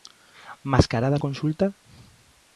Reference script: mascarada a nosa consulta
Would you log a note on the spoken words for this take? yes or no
yes